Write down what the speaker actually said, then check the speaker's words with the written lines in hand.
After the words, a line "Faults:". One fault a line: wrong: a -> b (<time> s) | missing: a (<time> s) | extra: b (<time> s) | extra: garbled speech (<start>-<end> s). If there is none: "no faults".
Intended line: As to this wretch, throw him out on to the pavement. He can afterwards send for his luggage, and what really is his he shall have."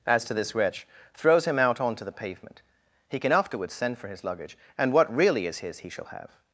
As to this wretch, throws him out on to the pavement. He can afterwards send for his luggage, and what really is his he shall have."
Faults:
wrong: throw -> throws (1.1 s)